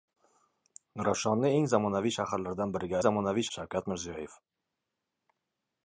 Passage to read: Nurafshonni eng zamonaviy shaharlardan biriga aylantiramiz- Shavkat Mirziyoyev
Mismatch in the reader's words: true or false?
true